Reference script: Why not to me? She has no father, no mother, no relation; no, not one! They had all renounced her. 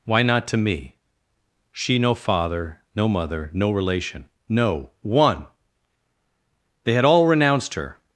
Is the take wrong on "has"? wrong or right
wrong